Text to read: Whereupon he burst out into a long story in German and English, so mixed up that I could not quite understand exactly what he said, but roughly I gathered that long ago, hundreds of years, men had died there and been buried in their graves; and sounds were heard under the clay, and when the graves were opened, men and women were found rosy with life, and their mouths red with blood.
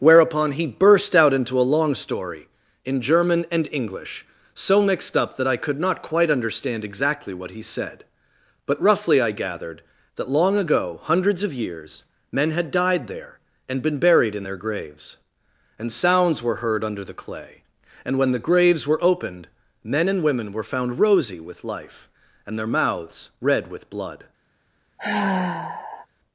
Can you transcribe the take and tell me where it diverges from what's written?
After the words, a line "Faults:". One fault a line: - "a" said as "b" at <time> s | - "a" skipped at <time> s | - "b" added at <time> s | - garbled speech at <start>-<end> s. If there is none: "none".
Whereupon he burst out into a long story in German and English, so mixed up that I could not quite understand exactly what he said, but roughly I gathered that long ago, hundreds of years, men had died there and been buried in their graves; and sounds were heard under the clay, and when the graves were opened, men and women were found rosy with life, and their mouths red with blood.
Faults:
none